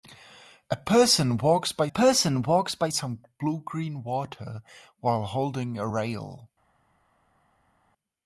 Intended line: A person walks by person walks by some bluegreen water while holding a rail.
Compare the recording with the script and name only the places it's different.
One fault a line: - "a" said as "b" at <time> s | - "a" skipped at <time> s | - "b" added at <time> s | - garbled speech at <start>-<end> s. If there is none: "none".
none